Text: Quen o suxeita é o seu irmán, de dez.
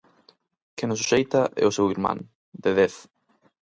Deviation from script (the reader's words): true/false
false